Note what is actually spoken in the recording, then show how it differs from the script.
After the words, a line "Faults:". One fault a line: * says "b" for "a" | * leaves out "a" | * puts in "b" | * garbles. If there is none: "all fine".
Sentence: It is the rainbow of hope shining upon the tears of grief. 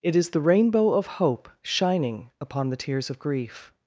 It is the rainbow of hope shining upon the tears of grief.
Faults:
all fine